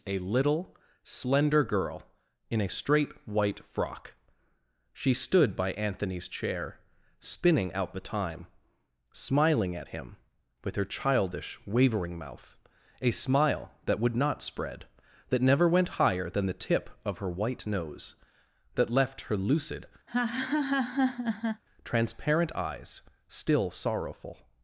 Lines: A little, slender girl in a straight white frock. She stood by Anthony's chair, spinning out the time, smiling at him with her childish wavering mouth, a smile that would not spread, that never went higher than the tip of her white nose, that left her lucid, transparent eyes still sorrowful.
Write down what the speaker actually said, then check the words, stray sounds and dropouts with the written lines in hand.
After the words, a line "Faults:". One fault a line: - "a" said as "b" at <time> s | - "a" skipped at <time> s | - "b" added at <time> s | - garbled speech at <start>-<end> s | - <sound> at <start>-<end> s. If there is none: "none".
A little, slender girl in a straight white frock. She stood by Anthony's chair, spinning out the time, smiling at him with her childish wavering mouth, a smile that would not spread, that never went higher than the tip of her white nose, that left her lucid, transparent eyes still sorrowful.
Faults:
- laugh at 20.1-21.6 s